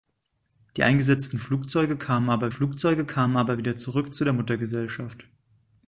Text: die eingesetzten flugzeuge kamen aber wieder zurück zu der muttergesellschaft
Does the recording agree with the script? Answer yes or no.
no